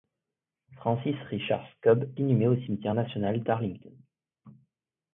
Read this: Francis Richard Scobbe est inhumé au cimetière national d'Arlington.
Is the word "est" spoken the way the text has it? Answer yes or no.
no